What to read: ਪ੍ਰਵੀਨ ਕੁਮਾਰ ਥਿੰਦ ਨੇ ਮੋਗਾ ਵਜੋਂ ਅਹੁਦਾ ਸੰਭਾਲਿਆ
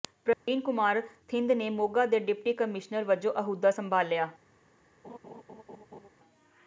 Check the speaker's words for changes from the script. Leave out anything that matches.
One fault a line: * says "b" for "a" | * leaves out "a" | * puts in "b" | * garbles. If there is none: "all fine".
* puts in "ਦੇ ਡਿਪਟੀ ਕਮਿਸ਼ਨਰ"